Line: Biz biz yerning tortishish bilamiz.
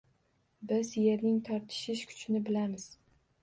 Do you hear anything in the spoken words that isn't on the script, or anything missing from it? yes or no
yes